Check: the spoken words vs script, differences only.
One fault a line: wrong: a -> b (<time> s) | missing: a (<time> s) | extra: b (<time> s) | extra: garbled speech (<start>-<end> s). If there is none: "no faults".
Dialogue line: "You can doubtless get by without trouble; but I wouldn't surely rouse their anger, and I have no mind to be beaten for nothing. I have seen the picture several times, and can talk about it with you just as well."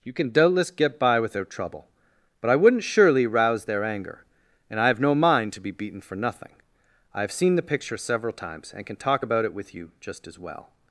no faults